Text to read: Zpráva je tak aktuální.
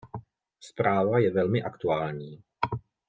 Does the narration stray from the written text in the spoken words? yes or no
yes